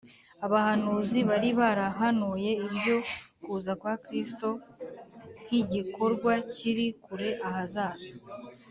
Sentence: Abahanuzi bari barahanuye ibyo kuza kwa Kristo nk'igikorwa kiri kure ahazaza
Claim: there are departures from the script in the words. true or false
false